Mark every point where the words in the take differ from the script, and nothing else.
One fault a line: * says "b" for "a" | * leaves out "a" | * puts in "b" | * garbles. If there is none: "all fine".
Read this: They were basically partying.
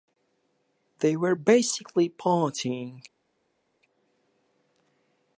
all fine